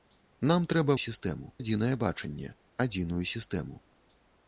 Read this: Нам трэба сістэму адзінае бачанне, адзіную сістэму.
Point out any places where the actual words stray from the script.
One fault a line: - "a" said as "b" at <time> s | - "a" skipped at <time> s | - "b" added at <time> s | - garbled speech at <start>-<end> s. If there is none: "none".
none